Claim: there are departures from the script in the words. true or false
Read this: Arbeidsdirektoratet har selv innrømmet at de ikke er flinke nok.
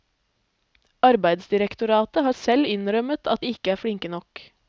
false